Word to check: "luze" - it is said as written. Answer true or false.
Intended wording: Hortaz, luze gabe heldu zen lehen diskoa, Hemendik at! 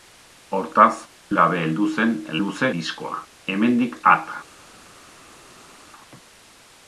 false